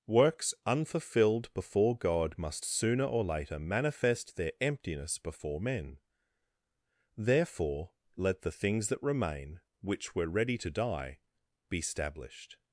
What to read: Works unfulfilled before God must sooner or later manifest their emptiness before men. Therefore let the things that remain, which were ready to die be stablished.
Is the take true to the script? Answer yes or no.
yes